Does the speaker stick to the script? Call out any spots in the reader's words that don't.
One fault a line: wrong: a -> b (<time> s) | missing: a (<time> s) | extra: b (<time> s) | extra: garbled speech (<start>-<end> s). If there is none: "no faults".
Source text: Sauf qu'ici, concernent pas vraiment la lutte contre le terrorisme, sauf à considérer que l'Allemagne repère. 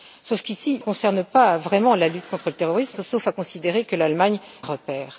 no faults